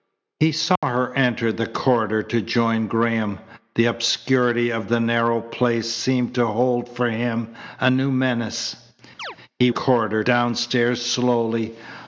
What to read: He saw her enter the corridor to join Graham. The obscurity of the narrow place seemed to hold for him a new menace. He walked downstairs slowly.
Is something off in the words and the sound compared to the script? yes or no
yes